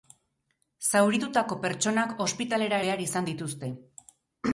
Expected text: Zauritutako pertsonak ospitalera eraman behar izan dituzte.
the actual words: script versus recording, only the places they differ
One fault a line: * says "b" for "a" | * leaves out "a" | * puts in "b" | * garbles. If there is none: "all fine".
* leaves out "eraman"